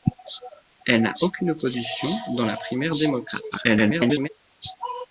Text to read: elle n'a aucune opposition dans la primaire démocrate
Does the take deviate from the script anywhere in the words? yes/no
yes